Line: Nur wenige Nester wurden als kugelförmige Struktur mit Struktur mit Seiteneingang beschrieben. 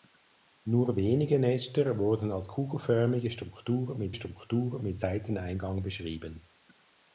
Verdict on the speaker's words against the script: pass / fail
pass